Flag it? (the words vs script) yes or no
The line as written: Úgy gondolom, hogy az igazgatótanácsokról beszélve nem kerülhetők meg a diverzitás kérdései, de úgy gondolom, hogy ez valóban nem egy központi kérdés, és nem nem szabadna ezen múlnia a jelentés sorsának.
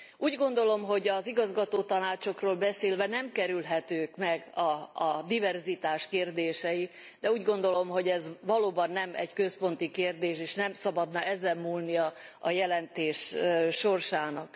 yes